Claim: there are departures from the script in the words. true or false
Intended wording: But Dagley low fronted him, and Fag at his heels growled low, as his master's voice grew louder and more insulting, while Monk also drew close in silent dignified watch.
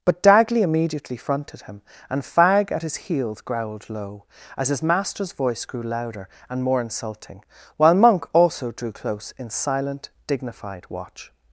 true